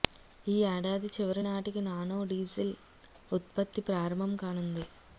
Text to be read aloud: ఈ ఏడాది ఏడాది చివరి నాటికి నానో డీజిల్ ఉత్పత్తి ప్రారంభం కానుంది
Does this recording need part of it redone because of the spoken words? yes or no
yes